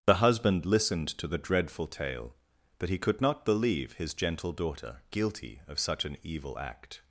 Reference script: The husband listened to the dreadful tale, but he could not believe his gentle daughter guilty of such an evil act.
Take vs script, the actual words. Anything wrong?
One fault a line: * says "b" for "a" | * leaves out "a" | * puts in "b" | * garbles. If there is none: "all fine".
all fine